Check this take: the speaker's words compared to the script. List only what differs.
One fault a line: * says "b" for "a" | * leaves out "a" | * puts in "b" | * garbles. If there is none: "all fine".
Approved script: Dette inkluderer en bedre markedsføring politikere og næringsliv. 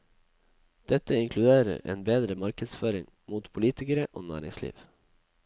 * puts in "mot"